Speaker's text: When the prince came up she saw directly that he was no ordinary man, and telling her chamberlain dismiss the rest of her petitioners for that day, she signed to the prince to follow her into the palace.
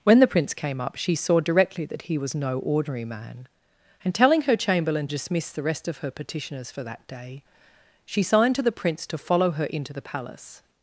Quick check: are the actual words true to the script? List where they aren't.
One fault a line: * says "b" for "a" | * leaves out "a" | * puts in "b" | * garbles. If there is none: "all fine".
all fine